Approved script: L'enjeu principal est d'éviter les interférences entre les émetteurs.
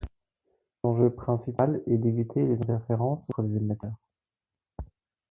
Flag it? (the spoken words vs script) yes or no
no